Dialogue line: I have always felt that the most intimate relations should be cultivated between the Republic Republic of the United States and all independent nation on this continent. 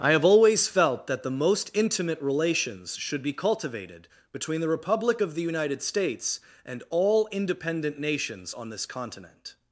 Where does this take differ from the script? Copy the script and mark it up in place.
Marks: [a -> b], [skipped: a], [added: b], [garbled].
I have always felt that the most intimate relations should be cultivated between the Republic [skipped: Republic] of the United States and all independent [nation -> nations] on this continent.